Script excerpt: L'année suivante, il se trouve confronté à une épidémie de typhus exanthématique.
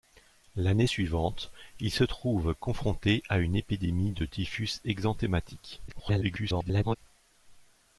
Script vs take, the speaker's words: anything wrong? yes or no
yes